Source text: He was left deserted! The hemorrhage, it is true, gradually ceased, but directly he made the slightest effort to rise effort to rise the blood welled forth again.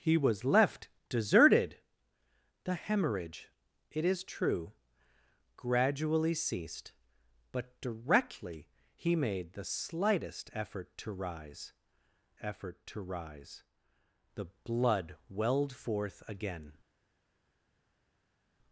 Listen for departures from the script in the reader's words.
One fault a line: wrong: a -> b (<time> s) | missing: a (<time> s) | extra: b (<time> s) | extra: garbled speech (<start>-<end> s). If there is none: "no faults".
no faults